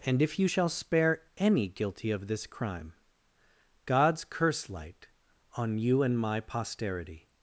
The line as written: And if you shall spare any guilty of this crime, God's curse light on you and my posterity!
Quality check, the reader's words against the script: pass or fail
pass